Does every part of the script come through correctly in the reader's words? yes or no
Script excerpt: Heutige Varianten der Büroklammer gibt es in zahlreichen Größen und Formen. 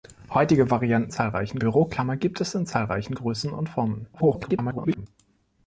no